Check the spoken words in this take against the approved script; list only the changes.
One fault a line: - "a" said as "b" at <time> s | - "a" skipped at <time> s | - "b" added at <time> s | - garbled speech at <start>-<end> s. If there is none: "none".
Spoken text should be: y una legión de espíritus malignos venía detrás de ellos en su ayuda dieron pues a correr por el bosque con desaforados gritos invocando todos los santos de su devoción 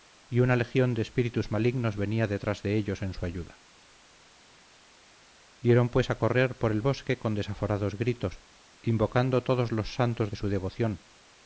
none